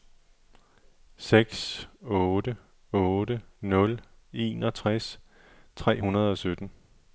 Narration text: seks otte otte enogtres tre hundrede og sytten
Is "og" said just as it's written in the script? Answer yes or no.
yes